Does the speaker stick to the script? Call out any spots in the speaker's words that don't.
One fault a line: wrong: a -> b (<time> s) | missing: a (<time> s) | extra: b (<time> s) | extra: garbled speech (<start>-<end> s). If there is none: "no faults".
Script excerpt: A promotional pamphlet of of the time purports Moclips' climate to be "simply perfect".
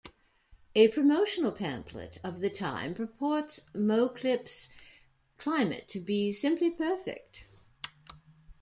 missing: of (2.4 s)